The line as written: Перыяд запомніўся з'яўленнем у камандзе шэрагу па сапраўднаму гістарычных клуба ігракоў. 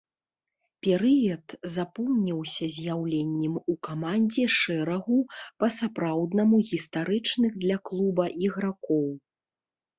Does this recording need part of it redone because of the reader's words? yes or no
yes